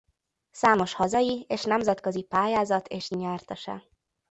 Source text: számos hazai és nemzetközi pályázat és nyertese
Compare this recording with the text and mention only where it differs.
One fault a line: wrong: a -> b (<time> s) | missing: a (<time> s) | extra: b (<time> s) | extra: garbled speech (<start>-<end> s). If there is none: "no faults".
no faults